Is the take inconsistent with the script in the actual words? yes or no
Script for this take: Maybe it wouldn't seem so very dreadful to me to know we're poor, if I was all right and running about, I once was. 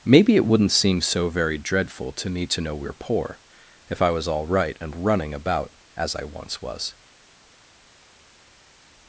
yes